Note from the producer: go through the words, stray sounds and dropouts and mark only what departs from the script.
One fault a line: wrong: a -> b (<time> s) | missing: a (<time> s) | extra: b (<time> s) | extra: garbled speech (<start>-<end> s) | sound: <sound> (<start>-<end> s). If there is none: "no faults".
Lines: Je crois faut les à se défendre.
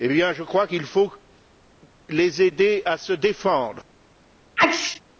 extra: qu'il (0.6 s)
extra: aider (2.4 s)
sound: sneeze (4.6-5.0 s)